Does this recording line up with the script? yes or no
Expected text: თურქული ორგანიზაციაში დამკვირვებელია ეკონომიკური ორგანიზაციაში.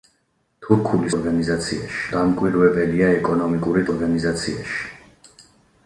yes